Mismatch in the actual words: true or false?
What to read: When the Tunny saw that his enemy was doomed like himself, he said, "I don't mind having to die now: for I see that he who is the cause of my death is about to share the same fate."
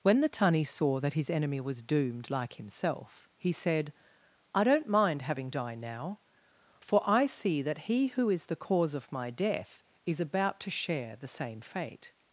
true